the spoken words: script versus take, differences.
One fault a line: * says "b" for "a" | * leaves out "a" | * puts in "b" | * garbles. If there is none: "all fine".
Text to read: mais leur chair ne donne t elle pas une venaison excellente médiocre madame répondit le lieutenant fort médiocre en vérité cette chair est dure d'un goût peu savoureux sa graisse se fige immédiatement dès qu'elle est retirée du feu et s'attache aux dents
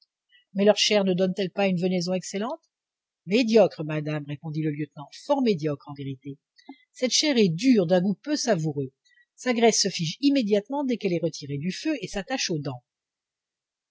all fine